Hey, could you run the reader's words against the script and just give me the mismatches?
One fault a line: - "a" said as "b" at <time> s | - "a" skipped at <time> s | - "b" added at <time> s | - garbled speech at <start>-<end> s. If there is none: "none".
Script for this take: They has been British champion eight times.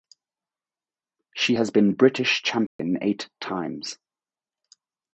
- "They" said as "She" at 1.4 s